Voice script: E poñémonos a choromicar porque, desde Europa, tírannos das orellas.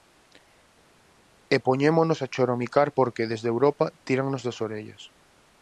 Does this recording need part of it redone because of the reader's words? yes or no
no